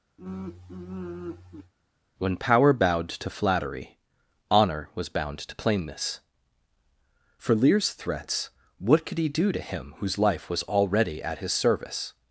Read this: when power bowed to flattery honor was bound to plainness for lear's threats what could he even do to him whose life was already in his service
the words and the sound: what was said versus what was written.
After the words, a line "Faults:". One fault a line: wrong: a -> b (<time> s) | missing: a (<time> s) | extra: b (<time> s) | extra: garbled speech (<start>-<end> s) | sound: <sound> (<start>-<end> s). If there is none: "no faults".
when power bowed to flattery honor was bound to plainness for lear's threats what could he do to him whose life was already at his service
Faults:
sound: sigh (0.2-1.7 s)
missing: even (9.3 s)
wrong: in -> at (11.2 s)